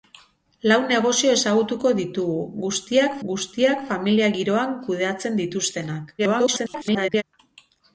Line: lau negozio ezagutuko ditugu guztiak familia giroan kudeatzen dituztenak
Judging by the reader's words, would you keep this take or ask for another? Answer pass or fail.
fail